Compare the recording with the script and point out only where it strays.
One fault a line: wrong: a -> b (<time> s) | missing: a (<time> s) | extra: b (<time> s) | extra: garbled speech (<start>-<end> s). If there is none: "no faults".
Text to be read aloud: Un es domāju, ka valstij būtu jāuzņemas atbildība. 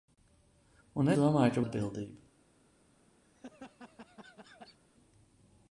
missing: es (1.1 s)
missing: valstij būtu jāuzņemas (1.6 s)